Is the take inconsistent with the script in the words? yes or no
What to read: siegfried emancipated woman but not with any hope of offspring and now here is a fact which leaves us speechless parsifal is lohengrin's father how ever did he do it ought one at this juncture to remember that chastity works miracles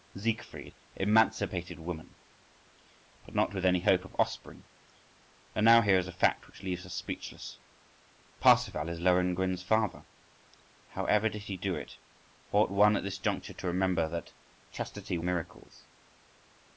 yes